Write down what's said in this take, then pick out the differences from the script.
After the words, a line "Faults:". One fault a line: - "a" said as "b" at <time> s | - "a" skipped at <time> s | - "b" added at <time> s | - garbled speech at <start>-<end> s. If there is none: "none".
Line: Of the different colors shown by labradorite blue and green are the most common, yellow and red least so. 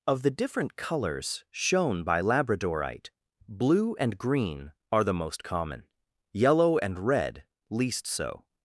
Of the different colors shown by labradorite blue and green are the most common, yellow and red least so.
Faults:
none